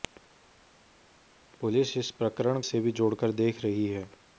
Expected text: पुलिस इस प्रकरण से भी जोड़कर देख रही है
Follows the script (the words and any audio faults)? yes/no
yes